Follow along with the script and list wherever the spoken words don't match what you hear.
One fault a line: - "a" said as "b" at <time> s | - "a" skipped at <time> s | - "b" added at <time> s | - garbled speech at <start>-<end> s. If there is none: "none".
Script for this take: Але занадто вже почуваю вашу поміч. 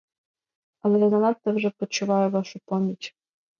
- "я" added at 1.0 s